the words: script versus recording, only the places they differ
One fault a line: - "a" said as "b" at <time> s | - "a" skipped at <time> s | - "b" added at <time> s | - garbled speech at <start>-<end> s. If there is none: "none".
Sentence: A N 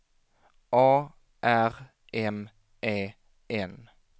- "R M E" added at 1.4 s